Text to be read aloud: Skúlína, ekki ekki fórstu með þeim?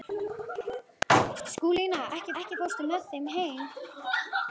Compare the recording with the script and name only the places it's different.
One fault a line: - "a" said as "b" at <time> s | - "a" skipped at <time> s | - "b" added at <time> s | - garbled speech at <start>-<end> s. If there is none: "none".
none